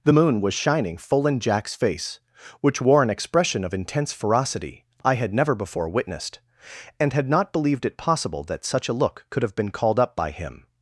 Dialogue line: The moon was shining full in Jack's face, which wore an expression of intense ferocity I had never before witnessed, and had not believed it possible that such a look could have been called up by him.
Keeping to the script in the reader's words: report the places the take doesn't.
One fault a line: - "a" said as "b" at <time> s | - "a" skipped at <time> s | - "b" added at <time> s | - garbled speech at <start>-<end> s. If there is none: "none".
none